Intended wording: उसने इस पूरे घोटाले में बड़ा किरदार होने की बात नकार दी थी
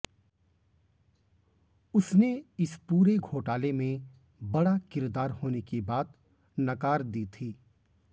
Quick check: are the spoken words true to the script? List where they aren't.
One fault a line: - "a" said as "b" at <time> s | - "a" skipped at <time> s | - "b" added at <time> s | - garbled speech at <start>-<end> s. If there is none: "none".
none